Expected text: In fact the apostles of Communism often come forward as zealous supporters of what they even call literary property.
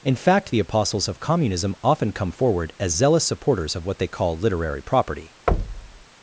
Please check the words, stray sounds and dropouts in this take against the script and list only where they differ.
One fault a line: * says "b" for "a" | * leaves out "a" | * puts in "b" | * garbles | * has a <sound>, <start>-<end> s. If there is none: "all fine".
* leaves out "even"
* has a thud, 5.5-6.0 s